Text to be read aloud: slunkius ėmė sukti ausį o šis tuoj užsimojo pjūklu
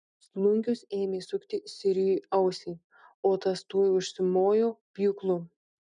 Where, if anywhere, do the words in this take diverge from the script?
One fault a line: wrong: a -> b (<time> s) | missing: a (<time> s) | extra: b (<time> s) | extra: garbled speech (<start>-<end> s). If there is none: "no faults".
extra: sirijui (1.7 s)
wrong: šis -> tas (3.5 s)